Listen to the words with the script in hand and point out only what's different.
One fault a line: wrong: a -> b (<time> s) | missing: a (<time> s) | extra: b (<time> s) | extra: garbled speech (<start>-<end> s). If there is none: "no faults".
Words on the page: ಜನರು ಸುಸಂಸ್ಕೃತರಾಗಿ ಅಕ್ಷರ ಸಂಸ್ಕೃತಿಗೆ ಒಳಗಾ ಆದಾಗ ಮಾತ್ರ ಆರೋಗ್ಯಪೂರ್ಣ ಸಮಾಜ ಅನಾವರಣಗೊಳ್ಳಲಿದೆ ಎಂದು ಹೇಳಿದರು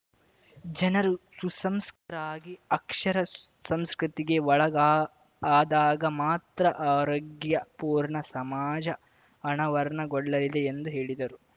no faults